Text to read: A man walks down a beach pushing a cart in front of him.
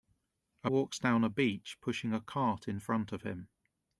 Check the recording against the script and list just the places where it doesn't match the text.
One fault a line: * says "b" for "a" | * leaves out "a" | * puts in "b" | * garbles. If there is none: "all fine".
* leaves out "man"